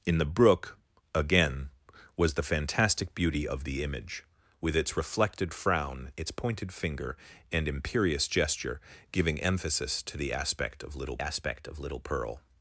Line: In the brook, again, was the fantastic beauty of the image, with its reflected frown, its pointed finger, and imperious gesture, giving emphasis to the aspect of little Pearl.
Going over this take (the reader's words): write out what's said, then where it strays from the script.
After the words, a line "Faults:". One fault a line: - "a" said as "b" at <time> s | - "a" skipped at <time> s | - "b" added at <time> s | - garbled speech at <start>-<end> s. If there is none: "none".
In the brook, again, was the fantastic beauty of the image, with its reflected frown, its pointed finger, and imperious gesture, giving emphasis to the aspect of little aspect of little Pearl.
Faults:
- "aspect of little" added at 11.2 s